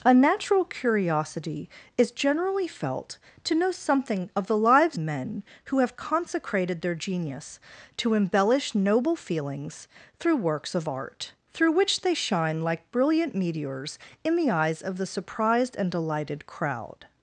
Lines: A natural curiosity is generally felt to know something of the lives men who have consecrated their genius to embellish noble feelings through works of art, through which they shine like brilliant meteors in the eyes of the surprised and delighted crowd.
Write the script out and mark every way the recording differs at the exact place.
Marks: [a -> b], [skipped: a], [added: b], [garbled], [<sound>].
A natural curiosity is generally felt to know something of the lives men who have consecrated their genius to embellish noble feelings through works of art, through which they shine like brilliant meteors in the eyes of the surprised and delighted crowd.